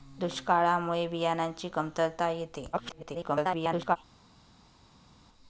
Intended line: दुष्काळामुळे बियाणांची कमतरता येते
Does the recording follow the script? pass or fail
fail